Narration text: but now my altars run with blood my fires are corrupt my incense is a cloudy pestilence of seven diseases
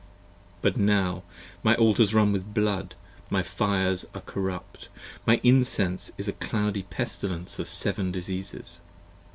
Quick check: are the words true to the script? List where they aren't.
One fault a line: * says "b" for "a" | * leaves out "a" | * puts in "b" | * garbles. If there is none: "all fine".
all fine